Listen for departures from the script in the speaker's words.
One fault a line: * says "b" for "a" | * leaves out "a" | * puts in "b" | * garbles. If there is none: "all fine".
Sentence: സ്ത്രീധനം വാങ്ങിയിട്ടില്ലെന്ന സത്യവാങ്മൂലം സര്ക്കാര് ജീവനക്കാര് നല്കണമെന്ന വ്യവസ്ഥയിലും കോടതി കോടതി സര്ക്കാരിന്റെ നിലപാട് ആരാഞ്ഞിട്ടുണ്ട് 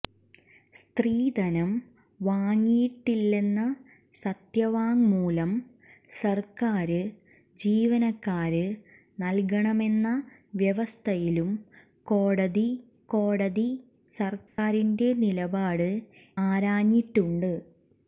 all fine